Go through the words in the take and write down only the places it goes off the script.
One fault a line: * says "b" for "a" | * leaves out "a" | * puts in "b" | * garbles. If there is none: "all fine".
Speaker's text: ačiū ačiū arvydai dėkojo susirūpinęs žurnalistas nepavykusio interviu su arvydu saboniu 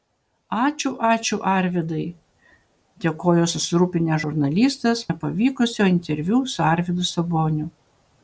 all fine